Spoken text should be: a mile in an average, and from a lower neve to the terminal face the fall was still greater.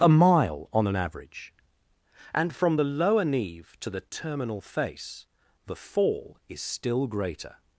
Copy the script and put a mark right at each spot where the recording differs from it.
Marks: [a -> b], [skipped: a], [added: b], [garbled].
a mile [in -> on] an average, and from [a -> the] lower neve to the terminal face the fall [was -> is] still greater.